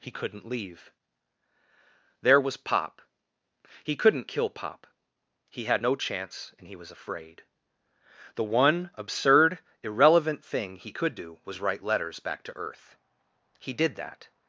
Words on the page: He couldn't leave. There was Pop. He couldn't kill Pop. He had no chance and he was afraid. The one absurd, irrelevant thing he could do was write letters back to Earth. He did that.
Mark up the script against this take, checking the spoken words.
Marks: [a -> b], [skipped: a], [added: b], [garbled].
He couldn't leave. There was Pop. He couldn't kill Pop. He had no chance and he was afraid. The one absurd, irrelevant thing he could do was write letters back to Earth. He did that.